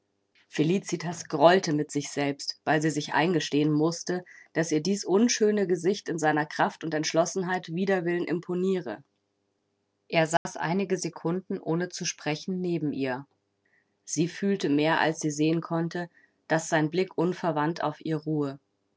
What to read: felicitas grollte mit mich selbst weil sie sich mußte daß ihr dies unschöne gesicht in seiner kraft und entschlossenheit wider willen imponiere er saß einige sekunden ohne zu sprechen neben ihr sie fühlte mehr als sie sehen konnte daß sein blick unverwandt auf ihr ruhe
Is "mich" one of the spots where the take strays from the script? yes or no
yes